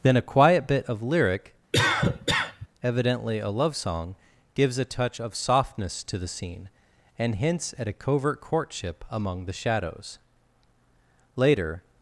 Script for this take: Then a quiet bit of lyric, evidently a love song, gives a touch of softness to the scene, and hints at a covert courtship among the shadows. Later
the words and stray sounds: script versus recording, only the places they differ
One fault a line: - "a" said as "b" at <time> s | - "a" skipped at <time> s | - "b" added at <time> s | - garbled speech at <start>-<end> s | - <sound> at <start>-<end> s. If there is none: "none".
- cough at 1.7-2.7 s